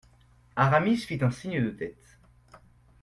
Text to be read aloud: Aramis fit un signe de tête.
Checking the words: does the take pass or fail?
pass